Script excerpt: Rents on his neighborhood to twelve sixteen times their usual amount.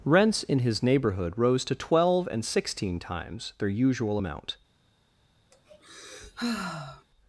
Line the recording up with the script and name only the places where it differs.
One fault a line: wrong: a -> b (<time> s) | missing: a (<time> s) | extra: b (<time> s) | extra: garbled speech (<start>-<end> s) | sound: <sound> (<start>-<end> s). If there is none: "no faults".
wrong: on -> in (0.4 s)
extra: rose (1.4 s)
extra: and (2.3 s)
sound: sigh (5.5-7.0 s)